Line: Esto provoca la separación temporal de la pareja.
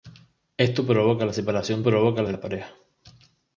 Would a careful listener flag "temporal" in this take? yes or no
yes